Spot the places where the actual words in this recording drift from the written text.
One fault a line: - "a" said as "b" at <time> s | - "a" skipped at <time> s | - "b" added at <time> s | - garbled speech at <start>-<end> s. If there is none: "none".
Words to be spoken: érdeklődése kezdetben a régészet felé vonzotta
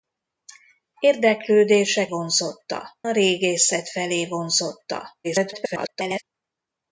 - "kezdetben" said as "vonzotta" at 2.1 s
- garbled speech at 5.2-6.2 s